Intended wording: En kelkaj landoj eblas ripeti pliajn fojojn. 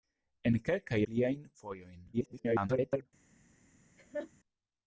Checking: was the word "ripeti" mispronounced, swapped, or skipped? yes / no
yes